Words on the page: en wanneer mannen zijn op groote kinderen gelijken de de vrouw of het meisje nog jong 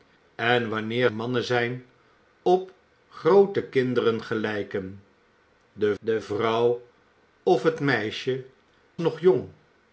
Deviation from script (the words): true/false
false